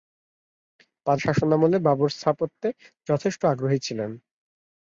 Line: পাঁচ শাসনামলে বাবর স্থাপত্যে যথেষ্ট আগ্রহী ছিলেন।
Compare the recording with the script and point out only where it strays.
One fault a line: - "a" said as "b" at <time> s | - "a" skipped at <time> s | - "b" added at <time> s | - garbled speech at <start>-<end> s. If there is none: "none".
none